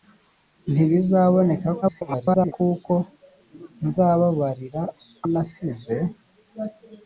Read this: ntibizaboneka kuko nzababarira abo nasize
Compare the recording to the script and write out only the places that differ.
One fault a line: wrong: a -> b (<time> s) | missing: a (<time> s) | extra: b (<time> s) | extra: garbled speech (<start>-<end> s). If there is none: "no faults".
extra: garbled speech (1.8-2.5 s)
missing: abo (4.8 s)